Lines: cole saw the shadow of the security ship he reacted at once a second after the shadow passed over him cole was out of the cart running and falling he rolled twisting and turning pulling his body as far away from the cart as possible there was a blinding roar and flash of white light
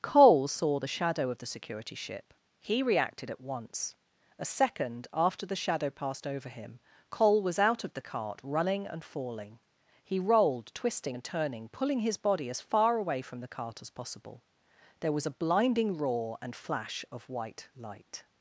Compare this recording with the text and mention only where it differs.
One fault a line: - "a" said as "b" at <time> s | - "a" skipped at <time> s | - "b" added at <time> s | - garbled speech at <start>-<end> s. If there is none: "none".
none